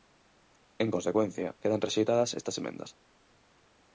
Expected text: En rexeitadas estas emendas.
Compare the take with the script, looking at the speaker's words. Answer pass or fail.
fail